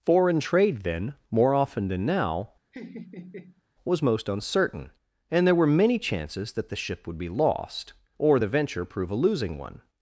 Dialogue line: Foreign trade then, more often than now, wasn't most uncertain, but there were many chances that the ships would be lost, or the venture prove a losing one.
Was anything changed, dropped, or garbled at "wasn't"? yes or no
yes